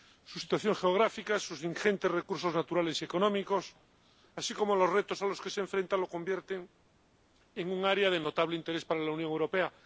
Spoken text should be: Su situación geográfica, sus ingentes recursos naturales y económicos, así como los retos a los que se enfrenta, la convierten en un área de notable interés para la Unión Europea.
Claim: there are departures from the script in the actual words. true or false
false